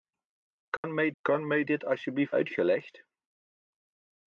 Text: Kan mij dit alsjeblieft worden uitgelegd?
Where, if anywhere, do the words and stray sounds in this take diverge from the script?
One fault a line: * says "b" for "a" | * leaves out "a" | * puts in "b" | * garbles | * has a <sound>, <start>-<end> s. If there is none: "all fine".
* has a dropout, 0.8-0.8 s
* puts in "kan mij"
* leaves out "worden"